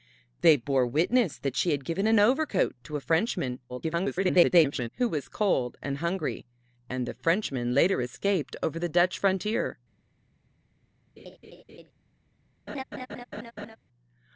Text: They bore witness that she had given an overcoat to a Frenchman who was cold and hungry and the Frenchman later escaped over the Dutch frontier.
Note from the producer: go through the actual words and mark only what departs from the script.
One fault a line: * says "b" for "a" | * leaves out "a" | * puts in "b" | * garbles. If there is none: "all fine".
* garbles